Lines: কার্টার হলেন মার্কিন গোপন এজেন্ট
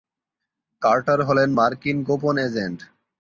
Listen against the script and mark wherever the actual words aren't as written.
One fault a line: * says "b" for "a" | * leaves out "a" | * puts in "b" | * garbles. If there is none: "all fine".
all fine